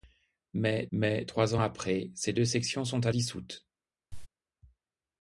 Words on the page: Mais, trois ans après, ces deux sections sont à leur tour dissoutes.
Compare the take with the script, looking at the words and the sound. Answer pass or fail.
fail